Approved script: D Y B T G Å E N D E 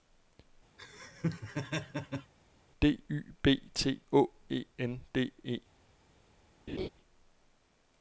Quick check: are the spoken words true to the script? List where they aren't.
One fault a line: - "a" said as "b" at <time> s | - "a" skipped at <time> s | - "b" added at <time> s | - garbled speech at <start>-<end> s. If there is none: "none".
- "G" skipped at 4.0 s